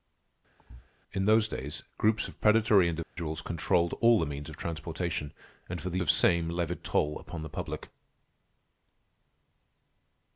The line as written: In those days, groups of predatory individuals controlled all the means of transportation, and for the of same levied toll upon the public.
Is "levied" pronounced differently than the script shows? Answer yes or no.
no